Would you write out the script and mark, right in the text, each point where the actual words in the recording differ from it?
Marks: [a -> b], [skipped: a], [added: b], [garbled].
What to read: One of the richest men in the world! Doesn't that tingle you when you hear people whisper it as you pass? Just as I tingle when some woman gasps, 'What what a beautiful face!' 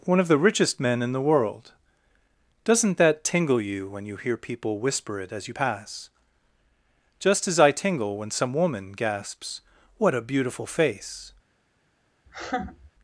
One of the richest men in the world! Doesn't that tingle you when you hear people whisper it as you pass? Just as I tingle when some woman gasps, 'What [skipped: what] a beautiful face!'